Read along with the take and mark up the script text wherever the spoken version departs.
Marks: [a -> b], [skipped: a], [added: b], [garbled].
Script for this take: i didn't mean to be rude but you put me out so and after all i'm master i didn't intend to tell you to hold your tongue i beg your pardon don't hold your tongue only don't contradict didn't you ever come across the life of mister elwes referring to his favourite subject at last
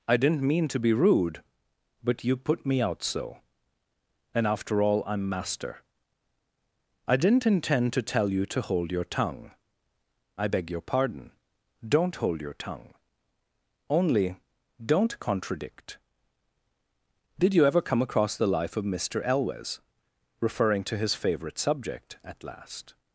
i didn't mean to be rude but you put me out so and after all i'm master i didn't intend to tell you to hold your tongue i beg your pardon don't hold your tongue only don't contradict [didn't -> did] you ever come across the life of mister elwes referring to his favourite subject at last